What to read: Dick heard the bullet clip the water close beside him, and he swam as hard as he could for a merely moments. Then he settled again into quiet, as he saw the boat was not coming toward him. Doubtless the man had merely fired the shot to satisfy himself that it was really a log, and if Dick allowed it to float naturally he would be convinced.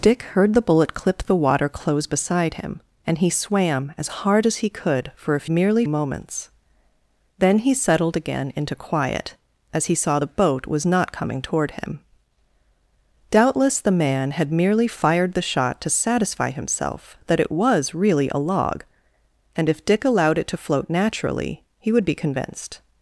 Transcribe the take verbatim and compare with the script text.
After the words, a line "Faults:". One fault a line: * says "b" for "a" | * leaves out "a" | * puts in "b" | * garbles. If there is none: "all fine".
Dick heard the bullet clip the water close beside him, and he swam as hard as he could for a merely moments. Then he settled again into quiet, as he saw the boat was not coming toward him. Doubtless the man had merely fired the shot to satisfy himself that it was really a log, and if Dick allowed it to float naturally he would be convinced.
Faults:
all fine